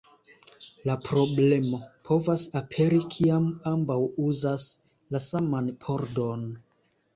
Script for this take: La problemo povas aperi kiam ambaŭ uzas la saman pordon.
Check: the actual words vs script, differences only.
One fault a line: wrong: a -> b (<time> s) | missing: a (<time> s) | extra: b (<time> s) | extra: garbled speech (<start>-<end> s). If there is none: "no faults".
no faults